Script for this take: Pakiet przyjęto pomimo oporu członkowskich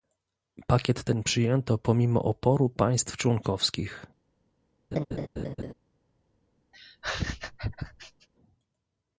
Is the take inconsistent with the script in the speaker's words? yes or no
yes